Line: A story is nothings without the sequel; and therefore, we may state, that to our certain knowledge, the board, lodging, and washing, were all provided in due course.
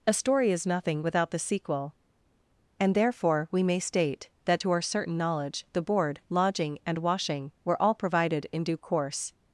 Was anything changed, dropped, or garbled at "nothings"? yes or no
yes